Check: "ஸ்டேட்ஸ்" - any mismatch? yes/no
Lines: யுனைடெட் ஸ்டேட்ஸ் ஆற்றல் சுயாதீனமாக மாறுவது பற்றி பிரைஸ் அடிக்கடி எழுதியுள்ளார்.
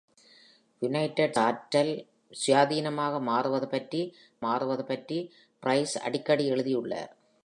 yes